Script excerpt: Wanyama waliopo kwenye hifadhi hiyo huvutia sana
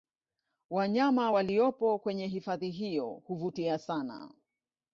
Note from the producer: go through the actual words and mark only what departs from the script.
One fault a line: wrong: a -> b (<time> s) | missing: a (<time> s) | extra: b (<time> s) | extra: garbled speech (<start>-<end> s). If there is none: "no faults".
no faults